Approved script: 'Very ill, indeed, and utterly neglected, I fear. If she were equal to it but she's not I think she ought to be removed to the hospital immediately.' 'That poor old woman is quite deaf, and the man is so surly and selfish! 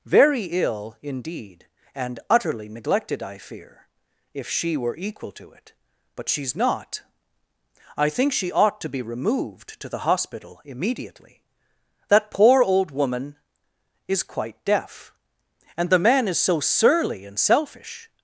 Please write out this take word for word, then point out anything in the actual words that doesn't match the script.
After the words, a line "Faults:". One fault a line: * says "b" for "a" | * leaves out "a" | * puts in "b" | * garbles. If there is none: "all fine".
'Very ill, indeed, and utterly neglected, I fear. If she were equal to it but she's not I think she ought to be removed to the hospital immediately.' 'That poor old woman is quite deaf, and the man is so surly and selfish!
Faults:
all fine